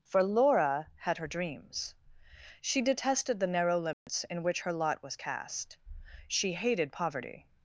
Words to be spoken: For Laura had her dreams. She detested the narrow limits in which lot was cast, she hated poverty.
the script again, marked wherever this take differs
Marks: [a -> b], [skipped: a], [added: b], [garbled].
For Laura had her dreams. She detested the narrow limits in which [added: her] lot was cast, she hated poverty.